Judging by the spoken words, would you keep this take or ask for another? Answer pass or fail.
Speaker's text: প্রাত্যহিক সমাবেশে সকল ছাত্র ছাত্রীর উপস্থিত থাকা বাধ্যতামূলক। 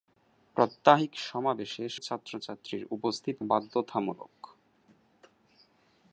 fail